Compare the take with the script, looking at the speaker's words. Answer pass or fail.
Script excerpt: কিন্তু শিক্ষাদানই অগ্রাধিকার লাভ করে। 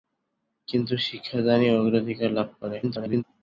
fail